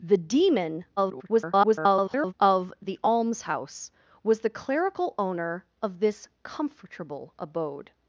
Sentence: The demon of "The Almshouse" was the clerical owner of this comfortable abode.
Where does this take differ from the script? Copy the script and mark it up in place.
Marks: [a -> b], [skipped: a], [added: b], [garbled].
The demon [garbled] of "The Almshouse" was the clerical owner of this comfortable abode.